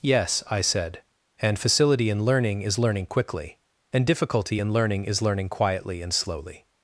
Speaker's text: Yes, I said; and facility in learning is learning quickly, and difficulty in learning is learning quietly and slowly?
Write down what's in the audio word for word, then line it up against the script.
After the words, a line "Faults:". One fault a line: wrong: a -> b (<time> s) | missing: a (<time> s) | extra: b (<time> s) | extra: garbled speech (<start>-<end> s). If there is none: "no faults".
Yes, I said; and facility in learning is learning quickly, and difficulty in learning is learning quietly and slowly?
Faults:
no faults